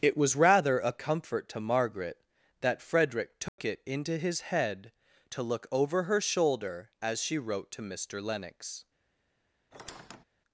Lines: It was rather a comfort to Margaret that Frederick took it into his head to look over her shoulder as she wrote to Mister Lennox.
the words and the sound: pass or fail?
fail